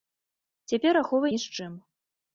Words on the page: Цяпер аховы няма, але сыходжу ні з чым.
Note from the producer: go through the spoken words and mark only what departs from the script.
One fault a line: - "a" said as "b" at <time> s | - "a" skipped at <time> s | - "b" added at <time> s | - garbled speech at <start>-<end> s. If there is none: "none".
- "няма але сыходжу" skipped at 1.3 s